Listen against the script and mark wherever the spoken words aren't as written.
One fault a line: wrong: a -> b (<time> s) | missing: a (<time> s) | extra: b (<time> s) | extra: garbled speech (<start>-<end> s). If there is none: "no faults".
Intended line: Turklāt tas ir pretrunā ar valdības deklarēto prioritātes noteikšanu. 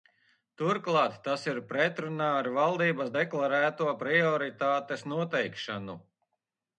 no faults